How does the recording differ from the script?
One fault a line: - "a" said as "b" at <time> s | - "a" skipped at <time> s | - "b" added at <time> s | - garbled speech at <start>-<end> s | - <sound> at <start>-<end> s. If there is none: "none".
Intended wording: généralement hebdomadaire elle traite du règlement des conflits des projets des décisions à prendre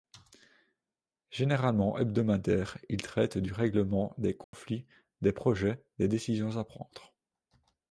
- "elle" said as "il" at 2.9 s
- dropout at 4.4-4.5 s